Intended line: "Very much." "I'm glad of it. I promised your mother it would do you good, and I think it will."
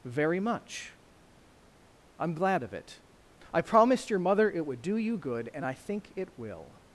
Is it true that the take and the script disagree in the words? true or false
false